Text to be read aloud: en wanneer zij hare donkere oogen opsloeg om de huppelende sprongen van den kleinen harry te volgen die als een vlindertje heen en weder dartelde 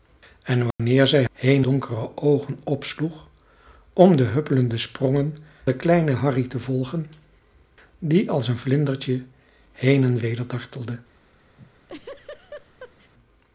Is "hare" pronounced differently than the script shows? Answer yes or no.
yes